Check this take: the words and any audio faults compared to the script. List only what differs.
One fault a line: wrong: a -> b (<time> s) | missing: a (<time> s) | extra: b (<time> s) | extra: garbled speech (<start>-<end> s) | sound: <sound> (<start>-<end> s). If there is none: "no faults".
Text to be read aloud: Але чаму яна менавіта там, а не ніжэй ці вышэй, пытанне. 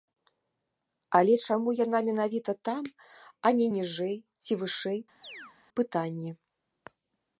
sound: chirp (5.2-5.6 s)